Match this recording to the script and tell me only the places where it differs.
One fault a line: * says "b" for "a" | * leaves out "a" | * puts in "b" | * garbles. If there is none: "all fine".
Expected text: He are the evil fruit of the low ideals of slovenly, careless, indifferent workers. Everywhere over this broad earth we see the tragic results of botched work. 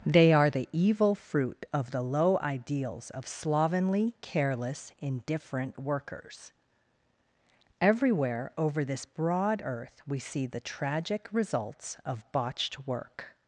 * says "They" for "He"